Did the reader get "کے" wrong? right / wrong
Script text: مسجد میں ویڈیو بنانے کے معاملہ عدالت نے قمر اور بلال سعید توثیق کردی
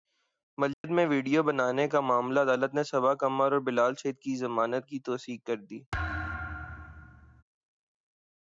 wrong